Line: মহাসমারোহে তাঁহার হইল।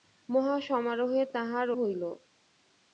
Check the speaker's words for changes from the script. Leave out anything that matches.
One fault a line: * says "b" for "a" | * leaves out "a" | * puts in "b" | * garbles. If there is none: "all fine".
all fine